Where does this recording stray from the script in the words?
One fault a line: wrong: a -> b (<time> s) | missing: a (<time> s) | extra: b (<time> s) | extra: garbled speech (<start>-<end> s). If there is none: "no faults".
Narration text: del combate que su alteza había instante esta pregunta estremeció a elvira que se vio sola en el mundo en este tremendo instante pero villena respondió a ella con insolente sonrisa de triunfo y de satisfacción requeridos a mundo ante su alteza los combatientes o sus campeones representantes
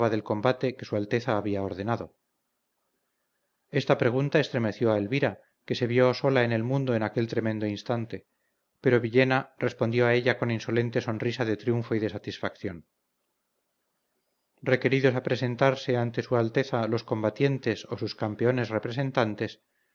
wrong: instante -> ordenado (1.6 s)
wrong: este -> aquel (7.0 s)
wrong: mundo -> presentarse (15.2 s)